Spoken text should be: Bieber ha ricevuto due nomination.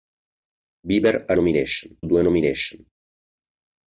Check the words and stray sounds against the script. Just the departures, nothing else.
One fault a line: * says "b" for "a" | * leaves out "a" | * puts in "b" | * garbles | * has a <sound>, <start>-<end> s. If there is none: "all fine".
* says "nomination" for "ricevuto"